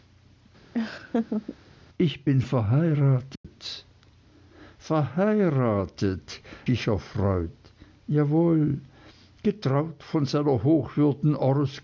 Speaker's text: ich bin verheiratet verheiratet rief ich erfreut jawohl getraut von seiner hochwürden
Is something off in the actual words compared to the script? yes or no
yes